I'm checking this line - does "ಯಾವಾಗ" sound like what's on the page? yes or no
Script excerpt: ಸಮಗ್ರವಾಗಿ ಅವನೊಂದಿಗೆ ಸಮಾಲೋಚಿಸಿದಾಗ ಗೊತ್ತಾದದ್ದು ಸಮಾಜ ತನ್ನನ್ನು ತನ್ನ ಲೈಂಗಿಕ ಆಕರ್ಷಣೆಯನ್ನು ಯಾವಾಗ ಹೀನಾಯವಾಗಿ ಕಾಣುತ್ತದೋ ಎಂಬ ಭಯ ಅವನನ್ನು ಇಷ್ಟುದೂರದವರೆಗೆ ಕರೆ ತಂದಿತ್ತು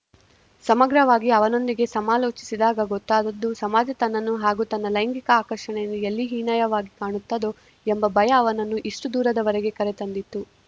no